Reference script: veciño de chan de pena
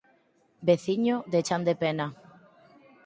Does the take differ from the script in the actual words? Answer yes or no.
no